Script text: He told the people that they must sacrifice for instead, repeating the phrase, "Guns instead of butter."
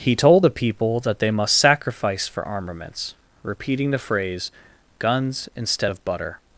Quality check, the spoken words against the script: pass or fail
fail